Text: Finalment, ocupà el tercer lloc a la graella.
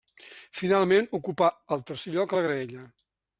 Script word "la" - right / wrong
right